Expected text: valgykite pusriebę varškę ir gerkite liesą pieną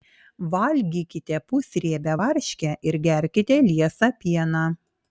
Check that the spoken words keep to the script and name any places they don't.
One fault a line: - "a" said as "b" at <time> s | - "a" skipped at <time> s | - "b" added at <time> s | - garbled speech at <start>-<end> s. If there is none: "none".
none